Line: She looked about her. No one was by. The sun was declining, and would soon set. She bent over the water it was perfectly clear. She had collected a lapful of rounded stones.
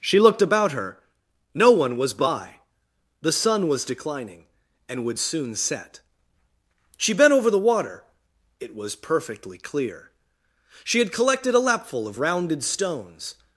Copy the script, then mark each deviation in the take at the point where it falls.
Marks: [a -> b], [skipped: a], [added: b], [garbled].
She looked about her. No one was by. The sun was declining, and would soon set. She bent over the water it was perfectly clear. She had collected a lapful of rounded stones.